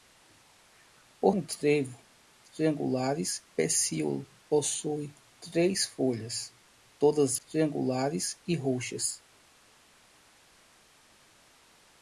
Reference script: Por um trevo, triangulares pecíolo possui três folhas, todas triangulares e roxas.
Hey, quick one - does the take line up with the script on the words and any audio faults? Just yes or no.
yes